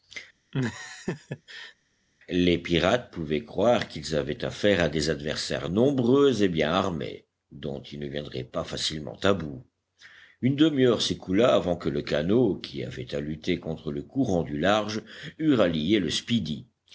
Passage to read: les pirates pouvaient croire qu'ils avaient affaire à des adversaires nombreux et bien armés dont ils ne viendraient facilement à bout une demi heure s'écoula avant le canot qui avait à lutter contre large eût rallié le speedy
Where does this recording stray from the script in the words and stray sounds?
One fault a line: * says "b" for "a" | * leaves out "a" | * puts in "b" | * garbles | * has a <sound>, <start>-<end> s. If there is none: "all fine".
* has a laugh, 0.5-1.7 s
* puts in "pas"
* puts in "que"
* puts in "le courant du"